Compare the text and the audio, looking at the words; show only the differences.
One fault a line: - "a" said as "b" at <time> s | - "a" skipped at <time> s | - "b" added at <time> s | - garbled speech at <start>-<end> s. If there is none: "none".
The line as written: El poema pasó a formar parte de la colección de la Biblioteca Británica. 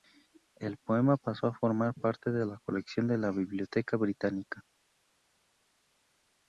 none